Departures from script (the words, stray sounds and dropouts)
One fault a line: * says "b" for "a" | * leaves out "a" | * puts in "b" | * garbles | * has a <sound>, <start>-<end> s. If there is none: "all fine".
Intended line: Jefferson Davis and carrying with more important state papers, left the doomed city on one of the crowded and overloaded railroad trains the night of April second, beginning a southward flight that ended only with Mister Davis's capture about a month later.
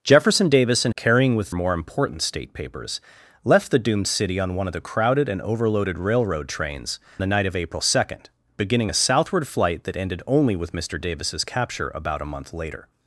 all fine